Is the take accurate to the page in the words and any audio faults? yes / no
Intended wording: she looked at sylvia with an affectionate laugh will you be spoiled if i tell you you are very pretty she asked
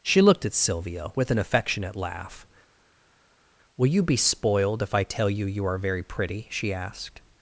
yes